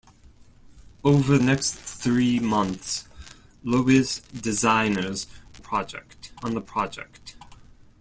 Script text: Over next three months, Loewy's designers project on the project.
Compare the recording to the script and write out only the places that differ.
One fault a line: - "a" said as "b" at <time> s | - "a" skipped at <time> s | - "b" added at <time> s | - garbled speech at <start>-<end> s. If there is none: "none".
none